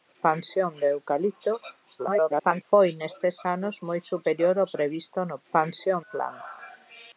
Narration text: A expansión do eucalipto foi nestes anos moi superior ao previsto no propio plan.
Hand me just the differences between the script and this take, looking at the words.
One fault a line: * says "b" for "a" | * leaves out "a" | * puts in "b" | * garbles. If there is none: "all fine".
* garbles
* says "expansión" for "propio"